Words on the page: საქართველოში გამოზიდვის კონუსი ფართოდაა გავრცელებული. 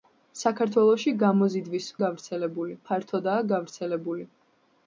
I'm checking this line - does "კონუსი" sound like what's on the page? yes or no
no